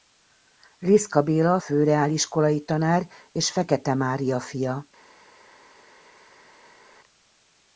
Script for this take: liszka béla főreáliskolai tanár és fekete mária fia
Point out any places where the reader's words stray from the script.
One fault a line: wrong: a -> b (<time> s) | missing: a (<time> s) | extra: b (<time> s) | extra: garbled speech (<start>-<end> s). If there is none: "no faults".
no faults